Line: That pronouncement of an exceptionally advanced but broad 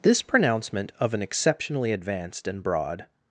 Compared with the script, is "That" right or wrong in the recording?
wrong